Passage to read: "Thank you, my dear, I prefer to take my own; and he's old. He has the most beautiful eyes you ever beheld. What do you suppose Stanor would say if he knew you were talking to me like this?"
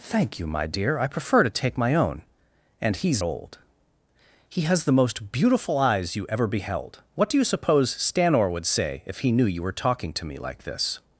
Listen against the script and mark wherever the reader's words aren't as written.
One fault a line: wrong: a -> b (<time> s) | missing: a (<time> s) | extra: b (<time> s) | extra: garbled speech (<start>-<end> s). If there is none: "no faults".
no faults